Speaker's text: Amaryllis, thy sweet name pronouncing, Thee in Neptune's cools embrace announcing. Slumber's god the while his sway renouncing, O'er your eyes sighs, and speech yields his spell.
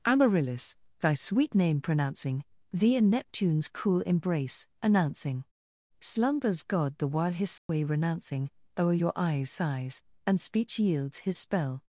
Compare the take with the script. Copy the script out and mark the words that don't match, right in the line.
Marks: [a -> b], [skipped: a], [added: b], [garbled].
Amaryllis, thy sweet name pronouncing, Thee in Neptune's [cools -> cool] embrace announcing. Slumber's god the while his sway renouncing, O'er your eyes sighs, and speech yields his spell.